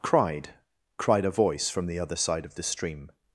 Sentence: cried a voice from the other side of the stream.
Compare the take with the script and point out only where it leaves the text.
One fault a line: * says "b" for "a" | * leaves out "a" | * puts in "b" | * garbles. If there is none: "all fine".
* puts in "cried"